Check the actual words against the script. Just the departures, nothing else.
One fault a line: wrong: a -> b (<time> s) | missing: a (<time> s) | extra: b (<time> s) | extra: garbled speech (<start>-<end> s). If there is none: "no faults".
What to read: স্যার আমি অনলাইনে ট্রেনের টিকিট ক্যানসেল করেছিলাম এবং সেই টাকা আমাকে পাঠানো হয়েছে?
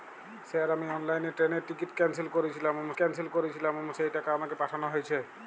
extra: ক্যানসেল করেছিলাম এবং (3.0 s)